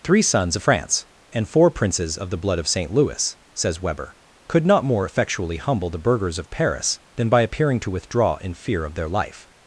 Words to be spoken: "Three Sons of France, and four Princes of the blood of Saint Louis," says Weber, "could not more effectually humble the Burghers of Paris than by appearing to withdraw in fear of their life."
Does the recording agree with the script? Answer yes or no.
yes